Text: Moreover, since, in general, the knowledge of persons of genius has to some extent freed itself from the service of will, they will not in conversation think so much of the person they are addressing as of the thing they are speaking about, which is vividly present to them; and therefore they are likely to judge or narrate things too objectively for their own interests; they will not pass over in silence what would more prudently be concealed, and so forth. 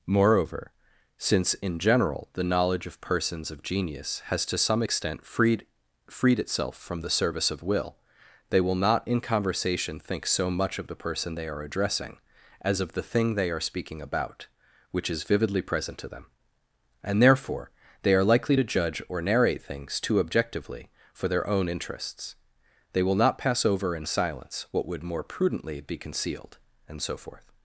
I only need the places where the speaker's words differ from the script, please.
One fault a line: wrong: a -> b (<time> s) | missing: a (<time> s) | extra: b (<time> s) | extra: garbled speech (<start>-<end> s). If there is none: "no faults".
extra: freed (6.1 s)